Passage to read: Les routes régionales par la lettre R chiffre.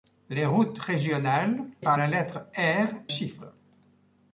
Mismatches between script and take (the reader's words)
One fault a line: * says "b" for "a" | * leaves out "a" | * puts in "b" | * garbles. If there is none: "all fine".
all fine